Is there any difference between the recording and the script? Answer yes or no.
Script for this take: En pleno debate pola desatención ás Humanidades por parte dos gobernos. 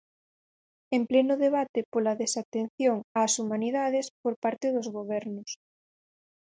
no